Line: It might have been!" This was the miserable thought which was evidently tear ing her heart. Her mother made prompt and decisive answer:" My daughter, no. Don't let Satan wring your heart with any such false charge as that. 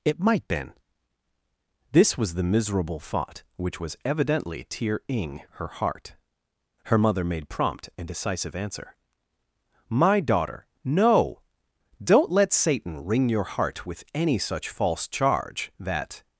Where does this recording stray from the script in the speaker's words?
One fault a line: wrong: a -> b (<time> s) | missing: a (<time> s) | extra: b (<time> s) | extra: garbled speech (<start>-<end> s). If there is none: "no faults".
missing: have (0.5 s)
missing: as (15.7 s)